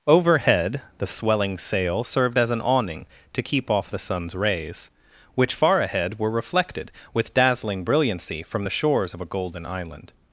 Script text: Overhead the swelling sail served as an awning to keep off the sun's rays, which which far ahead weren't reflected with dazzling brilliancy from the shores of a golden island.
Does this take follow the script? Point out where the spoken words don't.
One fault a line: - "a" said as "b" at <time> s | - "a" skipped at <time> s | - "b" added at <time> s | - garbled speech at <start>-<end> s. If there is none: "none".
- "which" skipped at 5.5 s
- "weren't" said as "were" at 6.2 s